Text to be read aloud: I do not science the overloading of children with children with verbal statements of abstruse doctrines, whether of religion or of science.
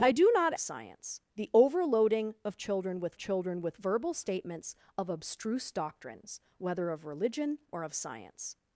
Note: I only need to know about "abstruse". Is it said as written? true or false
true